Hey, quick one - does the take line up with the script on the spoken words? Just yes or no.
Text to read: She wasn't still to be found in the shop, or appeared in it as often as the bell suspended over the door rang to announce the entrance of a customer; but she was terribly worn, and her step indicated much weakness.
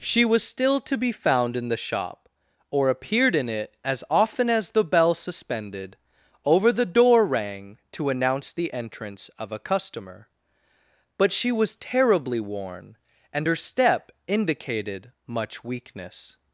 no